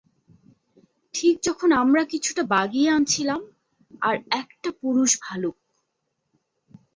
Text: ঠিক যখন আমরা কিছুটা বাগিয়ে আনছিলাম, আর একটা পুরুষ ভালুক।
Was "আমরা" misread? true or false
false